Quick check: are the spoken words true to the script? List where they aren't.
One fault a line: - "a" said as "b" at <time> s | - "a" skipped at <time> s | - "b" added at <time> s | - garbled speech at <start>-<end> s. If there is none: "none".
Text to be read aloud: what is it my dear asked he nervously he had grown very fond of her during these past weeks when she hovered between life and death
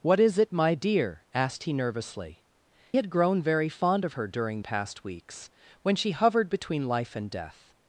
- "he" skipped at 2.4 s
- "these" skipped at 4.6 s